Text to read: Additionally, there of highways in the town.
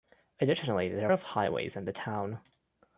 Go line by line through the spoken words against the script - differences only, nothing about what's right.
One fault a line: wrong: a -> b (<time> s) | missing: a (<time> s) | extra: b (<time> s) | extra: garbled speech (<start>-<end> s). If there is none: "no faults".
no faults